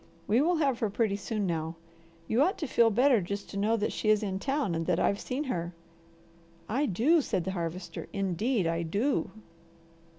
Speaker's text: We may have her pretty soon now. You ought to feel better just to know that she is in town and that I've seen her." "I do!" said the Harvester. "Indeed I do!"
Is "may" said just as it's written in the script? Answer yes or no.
no